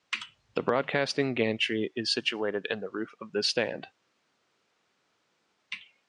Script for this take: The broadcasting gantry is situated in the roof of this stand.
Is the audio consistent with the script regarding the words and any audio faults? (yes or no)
yes